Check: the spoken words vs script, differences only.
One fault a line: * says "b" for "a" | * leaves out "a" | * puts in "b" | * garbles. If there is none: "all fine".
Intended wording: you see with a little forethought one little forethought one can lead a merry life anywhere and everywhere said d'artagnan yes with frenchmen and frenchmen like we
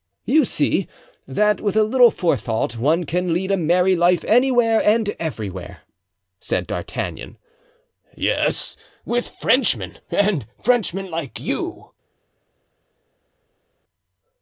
* puts in "that"
* leaves out "little forethought one"
* says "you" for "we"